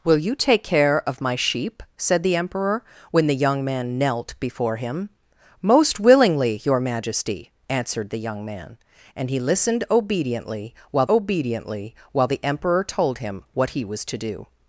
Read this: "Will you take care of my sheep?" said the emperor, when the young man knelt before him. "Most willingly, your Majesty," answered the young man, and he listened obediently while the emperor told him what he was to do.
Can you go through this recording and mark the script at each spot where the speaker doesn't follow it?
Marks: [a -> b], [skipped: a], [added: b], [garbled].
"Will you take care of my sheep?" said the emperor, when the young man knelt before him. "Most willingly, your Majesty," answered the young man, and he listened obediently while [added: obediently while] the emperor told him what he was to do.